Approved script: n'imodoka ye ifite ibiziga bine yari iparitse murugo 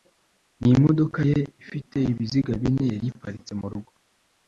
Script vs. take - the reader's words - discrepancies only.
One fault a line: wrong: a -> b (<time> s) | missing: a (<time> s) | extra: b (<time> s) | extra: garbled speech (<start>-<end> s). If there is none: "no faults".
no faults